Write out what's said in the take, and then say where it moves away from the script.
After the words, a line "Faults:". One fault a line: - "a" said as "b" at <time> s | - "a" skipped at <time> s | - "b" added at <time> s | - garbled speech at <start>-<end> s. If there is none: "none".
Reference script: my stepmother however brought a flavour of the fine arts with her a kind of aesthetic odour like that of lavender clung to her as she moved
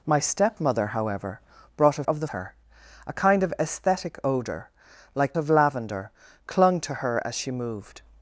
my stepmother however brought a of the her a kind of aesthetic odour like of lavender clung to her as she moved
Faults:
- "flavour" skipped at 2.0 s
- "fine arts with" skipped at 2.3 s
- "that" skipped at 5.4 s